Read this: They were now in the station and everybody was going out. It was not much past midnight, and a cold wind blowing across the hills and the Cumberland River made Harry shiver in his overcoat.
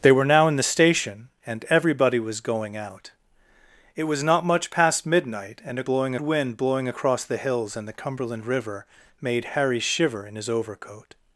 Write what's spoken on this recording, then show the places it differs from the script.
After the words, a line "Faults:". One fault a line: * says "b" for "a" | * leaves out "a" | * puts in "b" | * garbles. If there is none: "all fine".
They were now in the station and everybody was going out. It was not much past midnight, and a blowing wind blowing across the hills and the Cumberland River made Harry shiver in his overcoat.
Faults:
* says "blowing" for "cold"